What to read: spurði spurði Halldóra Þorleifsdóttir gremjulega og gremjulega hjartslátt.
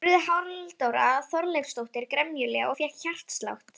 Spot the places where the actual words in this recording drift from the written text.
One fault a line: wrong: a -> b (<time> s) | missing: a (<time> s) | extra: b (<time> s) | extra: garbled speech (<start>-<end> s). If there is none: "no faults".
missing: spurði (0.2 s)
wrong: gremjulega -> fékk (2.8 s)